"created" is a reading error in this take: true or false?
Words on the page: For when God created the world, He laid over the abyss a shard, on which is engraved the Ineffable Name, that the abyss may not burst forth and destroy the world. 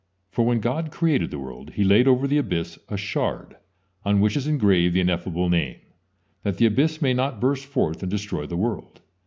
false